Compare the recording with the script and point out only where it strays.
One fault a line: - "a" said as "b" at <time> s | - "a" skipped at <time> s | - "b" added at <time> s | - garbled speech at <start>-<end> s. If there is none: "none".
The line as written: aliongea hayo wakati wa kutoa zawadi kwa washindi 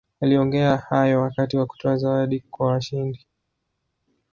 none